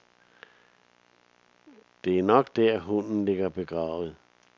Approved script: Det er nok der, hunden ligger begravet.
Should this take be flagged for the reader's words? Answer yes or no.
no